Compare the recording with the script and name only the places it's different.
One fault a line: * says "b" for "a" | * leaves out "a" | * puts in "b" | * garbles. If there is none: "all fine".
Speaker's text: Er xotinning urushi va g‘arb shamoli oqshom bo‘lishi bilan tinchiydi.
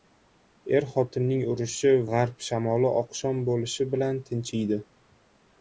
* leaves out "va"